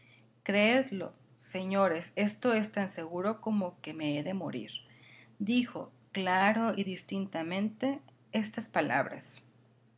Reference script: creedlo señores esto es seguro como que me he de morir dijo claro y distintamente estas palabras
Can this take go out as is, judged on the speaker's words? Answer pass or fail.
fail